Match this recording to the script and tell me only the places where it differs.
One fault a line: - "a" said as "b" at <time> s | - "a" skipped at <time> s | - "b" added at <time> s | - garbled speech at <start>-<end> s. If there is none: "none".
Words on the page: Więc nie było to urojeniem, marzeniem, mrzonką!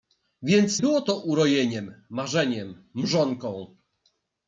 - "nie" skipped at 0.8 s